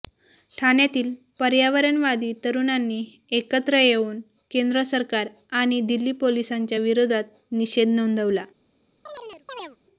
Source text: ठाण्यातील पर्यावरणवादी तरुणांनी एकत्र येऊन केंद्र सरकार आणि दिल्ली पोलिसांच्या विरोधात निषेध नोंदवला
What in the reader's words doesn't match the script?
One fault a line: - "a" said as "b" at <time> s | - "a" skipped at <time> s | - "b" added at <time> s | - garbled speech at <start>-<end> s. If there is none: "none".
none